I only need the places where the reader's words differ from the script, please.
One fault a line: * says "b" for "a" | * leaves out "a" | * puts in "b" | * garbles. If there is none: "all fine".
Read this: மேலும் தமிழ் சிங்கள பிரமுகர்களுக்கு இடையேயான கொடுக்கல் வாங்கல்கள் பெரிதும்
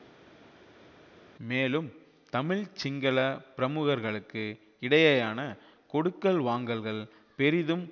all fine